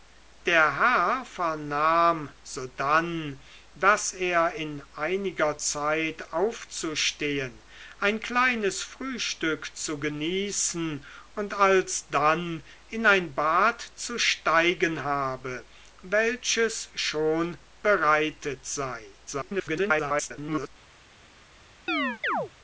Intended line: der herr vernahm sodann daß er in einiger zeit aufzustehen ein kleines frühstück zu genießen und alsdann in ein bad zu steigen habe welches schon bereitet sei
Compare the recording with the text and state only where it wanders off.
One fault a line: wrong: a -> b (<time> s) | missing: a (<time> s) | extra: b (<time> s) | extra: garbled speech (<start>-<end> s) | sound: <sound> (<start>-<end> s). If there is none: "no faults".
extra: garbled speech (19.3-20.7 s)
sound: chirp (21.9-22.5 s)